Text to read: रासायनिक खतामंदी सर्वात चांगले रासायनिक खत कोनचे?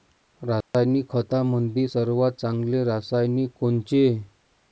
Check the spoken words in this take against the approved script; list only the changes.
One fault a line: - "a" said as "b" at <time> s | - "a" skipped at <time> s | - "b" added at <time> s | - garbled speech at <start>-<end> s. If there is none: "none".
- "खत" skipped at 3.5 s